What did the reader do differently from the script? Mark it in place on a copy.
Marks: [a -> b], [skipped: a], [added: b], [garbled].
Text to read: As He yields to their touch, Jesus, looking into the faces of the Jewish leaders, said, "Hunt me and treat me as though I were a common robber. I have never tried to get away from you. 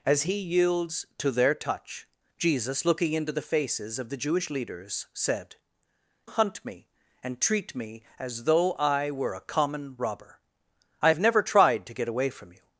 As He yields to their touch, Jesus, looking into the faces of the Jewish leaders, said, "Hunt me and treat me as though I were a common robber. I have never tried to get away from you.